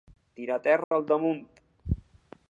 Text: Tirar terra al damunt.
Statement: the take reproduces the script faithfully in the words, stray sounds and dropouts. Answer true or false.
false